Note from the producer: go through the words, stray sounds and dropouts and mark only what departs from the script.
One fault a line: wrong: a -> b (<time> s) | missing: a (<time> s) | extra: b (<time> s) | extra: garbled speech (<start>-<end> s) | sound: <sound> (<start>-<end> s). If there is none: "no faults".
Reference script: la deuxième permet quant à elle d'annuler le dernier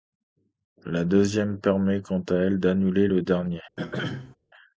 sound: throat clearing (3.8-4.4 s)